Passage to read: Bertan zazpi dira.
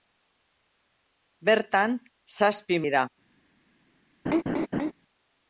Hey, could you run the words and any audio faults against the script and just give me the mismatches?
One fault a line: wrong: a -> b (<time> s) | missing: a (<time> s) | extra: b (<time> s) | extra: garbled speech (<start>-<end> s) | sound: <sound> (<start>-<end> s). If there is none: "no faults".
sound: laugh (4.3-4.9 s)